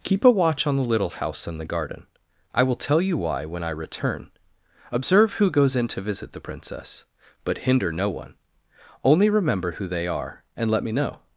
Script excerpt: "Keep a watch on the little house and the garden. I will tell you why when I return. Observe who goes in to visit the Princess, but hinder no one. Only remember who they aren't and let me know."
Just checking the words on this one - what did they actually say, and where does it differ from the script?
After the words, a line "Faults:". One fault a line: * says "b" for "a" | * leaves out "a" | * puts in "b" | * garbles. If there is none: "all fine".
"Keep a watch on the little house and the garden. I will tell you why when I return. Observe who goes in to visit the Princess, but hinder no one. Only remember who they are and let me know."
Faults:
* says "are" for "aren't"